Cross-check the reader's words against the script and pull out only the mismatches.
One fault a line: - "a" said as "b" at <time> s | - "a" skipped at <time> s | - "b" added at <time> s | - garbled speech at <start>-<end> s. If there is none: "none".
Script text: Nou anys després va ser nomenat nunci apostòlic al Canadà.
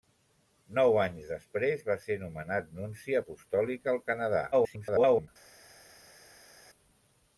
- garbled speech at 4.5-5.3 s